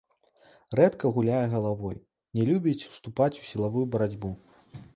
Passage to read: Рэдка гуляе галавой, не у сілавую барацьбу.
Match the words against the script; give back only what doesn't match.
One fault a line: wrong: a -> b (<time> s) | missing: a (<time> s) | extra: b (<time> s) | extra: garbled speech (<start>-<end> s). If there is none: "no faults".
extra: любіць уступаць (2.5 s)